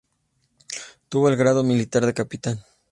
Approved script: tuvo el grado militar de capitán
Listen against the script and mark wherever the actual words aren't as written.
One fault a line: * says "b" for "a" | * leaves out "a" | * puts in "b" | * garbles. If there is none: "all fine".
all fine